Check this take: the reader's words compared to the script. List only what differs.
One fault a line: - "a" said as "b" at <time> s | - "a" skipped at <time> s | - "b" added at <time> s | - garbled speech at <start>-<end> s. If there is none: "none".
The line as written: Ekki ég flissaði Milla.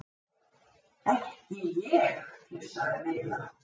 none